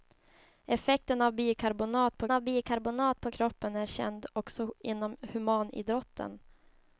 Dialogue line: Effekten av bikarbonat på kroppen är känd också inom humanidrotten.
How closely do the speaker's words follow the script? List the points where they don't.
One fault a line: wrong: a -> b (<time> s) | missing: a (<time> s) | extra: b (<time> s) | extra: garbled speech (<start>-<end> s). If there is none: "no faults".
extra: av bikarbonat på (2.3 s)